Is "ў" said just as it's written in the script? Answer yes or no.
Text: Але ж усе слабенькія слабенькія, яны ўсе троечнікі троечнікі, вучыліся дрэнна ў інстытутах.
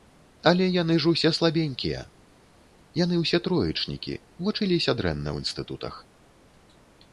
yes